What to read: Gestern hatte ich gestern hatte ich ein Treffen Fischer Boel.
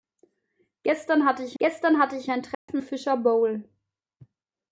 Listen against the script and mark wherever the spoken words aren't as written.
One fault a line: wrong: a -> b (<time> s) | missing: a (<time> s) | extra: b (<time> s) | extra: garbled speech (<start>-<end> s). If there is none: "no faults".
no faults